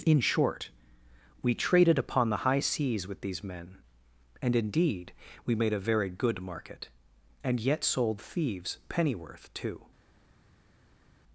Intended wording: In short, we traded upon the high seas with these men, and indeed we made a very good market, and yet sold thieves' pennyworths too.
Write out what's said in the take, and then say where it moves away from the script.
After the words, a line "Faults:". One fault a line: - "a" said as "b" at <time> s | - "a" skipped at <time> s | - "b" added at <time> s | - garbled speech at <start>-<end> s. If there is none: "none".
In short, we traded upon the high seas with these men, and indeed we made a very good market, and yet sold thieves' pennyworth too.
Faults:
- "pennyworths" said as "pennyworth" at 8.9 s